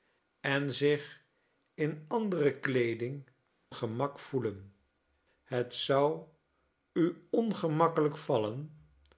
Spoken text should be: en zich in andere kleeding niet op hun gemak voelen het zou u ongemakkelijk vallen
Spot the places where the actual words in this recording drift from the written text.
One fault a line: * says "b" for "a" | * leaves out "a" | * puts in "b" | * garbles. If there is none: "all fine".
* leaves out "niet op hun"